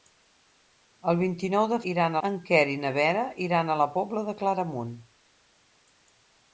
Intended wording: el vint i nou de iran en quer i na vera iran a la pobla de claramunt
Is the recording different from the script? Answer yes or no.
no